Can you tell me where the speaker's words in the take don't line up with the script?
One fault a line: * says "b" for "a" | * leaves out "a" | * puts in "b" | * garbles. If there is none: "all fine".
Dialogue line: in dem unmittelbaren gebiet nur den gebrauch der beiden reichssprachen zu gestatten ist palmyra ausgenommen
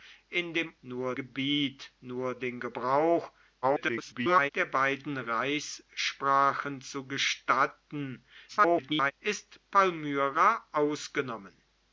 * says "nur" for "unmittelbaren"
* garbles
* garbles